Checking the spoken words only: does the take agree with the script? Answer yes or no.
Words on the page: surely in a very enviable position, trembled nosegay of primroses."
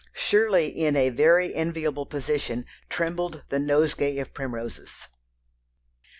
no